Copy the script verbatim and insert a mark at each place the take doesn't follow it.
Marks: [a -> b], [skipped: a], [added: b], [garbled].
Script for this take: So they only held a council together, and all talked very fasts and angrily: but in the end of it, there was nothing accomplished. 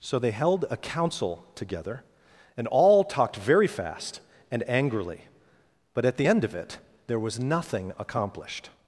So they [skipped: only] held a council together, and all talked very [fasts -> fast] and angrily: but [in -> at] the end of it, there was nothing accomplished.